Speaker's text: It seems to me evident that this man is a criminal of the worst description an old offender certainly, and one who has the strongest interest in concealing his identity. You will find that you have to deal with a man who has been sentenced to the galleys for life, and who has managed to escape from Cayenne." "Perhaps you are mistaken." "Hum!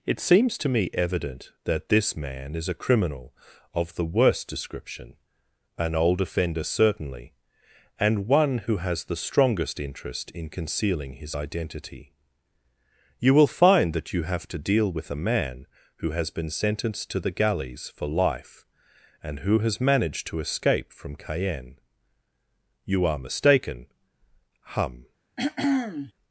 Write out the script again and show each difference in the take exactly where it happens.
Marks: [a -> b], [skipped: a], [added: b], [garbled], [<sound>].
It seems to me evident that this man is a criminal of the worst description an old offender certainly, and one who has the strongest interest in concealing his identity. You will find that you have to deal with a man who has been sentenced to the galleys for life, and who has managed to escape from Cayenne." [skipped: "Perhaps] you are mistaken." "Hum! [throat clearing]